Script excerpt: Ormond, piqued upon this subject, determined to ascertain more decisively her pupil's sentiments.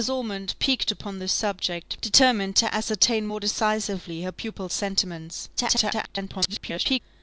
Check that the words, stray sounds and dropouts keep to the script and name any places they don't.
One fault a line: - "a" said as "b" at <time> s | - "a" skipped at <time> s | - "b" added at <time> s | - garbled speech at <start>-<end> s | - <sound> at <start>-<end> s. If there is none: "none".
- garbled speech at 5.6-7.0 s